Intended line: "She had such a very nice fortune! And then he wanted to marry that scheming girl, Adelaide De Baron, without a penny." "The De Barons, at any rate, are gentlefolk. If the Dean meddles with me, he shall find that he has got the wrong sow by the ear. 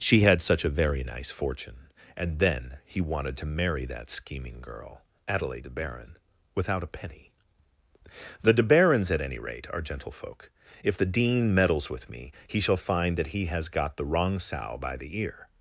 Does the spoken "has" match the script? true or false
true